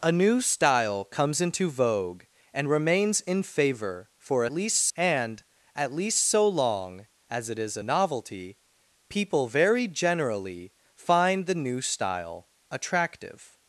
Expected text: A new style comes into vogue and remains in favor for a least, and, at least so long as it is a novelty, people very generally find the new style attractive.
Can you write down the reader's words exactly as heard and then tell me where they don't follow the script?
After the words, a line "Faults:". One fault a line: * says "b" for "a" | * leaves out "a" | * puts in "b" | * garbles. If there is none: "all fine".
A new style comes into vogue and remains in favor for a least, and, at least so long as it is a novelty, people very generally find the new style attractive.
Faults:
all fine